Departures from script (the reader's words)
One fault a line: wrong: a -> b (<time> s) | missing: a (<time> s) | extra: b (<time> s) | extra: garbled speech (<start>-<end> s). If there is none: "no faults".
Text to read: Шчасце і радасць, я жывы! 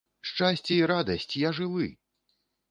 no faults